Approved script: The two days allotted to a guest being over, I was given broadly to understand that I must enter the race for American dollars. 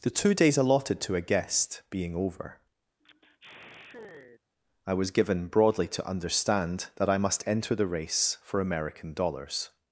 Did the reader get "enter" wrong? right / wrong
right